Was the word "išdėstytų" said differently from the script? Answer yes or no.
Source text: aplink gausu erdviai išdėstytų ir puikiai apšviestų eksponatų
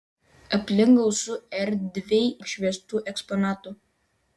yes